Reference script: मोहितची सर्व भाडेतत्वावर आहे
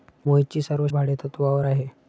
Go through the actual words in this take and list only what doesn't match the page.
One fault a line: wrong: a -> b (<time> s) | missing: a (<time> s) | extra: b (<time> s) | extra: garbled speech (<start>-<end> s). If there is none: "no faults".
no faults